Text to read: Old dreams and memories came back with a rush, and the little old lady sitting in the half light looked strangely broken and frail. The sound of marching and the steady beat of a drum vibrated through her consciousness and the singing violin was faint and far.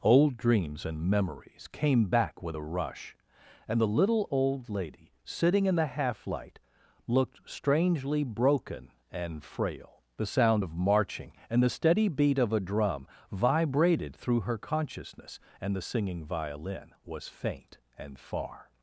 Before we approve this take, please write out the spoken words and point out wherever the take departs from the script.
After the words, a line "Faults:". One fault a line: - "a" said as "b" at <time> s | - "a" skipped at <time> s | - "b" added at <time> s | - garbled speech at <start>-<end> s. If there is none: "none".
Old dreams and memories came back with a rush, and the little old lady sitting in the half light looked strangely broken and frail. The sound of marching and the steady beat of a drum vibrated through her consciousness and the singing violin was faint and far.
Faults:
none